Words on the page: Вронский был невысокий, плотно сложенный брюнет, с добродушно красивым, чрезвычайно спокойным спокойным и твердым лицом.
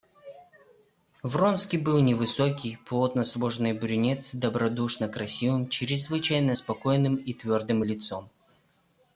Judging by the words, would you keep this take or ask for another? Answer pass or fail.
fail